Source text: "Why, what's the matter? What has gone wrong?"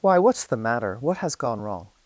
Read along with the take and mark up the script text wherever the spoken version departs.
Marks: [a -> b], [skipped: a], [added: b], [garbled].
"Why, what's the matter? What has gone wrong?"